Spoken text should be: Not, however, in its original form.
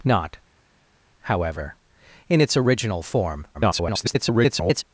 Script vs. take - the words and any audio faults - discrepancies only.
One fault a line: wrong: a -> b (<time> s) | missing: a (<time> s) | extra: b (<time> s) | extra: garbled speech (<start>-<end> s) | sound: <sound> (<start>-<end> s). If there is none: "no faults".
extra: garbled speech (3.5-4.8 s)